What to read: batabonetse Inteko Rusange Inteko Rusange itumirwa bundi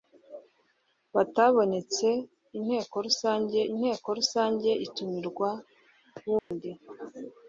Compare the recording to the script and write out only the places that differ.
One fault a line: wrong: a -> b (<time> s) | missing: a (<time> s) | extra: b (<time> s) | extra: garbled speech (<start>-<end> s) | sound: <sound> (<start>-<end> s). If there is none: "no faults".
sound: dropout (6.4-6.5 s)